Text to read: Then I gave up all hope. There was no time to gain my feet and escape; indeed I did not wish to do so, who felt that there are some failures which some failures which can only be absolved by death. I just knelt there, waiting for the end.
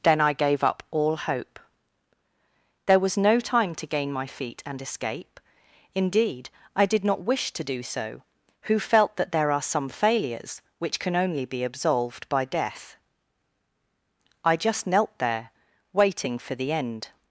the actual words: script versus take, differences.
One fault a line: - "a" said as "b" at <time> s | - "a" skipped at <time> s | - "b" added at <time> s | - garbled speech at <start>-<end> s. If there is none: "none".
- "some failures which" skipped at 11.0 s